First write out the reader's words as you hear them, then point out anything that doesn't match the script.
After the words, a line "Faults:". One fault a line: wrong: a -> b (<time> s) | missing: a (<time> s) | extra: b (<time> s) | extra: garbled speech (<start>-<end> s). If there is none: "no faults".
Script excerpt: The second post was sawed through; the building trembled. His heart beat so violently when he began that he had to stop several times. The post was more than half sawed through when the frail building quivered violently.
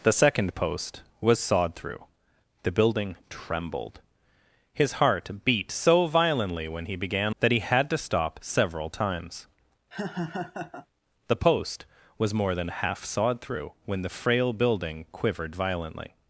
The second post was sawed through; the building trembled. His heart beat so violently when he began that he had to stop several times. The post was more than half sawed through when the frail building quivered violently.
Faults:
no faults